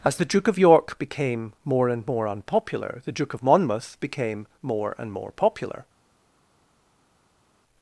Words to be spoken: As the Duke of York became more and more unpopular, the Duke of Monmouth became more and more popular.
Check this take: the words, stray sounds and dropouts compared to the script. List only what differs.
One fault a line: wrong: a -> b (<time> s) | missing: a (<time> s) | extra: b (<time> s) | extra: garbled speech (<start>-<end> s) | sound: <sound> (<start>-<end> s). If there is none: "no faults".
no faults